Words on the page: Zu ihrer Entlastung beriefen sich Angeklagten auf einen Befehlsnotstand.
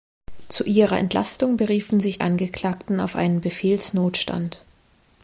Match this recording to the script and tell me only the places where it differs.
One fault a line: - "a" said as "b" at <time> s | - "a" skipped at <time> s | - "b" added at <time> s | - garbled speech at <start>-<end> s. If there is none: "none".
none